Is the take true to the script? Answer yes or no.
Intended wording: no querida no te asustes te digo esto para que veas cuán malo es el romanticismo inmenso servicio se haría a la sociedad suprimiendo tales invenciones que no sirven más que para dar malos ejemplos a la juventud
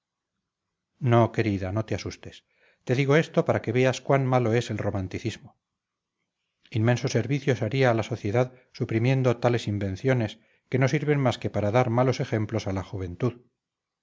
yes